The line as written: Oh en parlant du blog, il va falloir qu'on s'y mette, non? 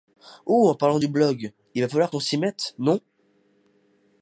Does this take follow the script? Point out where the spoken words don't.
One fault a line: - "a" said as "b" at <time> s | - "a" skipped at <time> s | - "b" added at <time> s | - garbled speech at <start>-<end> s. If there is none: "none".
none